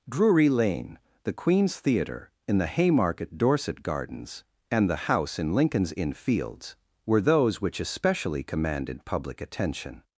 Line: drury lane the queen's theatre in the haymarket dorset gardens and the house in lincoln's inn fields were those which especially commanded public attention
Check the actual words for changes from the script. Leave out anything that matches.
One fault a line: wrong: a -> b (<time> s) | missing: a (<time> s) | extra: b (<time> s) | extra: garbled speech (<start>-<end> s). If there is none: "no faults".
no faults